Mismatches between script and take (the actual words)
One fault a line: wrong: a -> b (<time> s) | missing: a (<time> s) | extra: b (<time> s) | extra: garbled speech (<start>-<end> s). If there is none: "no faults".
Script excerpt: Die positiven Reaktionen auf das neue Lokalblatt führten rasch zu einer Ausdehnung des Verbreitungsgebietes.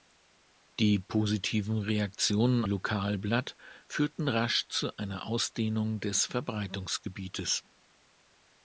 missing: auf das neue (2.6 s)